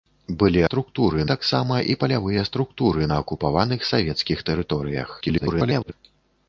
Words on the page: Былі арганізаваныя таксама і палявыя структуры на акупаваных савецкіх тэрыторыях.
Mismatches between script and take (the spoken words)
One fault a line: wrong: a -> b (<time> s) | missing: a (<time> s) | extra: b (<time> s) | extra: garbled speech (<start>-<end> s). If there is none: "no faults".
wrong: арганізаваныя -> структуры (0.7 s)
extra: garbled speech (5.2-5.9 s)